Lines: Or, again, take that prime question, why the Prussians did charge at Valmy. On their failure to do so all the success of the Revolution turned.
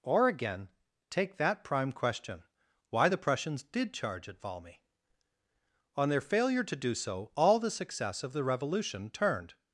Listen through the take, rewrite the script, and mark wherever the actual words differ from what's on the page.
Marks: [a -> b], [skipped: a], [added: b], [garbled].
Or, again, take that prime question, why the Prussians did charge at Valmy. On their failure to do so all the success of the Revolution turned.